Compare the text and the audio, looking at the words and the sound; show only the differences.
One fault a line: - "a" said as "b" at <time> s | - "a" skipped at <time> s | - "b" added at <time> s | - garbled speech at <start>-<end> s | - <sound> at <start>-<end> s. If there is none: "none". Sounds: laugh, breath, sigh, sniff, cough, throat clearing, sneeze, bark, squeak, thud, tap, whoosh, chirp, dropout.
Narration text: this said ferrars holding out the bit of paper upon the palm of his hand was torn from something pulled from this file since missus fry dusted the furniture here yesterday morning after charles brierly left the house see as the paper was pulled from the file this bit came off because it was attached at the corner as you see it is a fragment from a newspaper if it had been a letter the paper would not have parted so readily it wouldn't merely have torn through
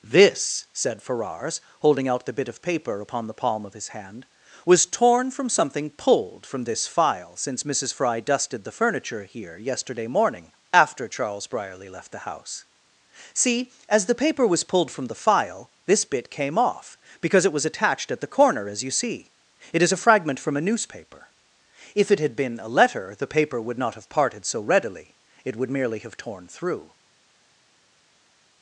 - "wouldn't" said as "would" at 25.6 s